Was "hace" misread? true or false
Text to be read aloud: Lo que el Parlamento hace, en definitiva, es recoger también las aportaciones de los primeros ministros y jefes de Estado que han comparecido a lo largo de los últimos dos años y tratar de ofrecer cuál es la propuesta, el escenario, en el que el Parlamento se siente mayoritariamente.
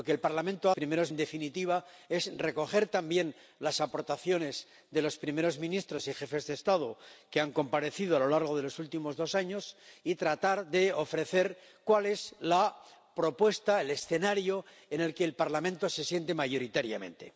true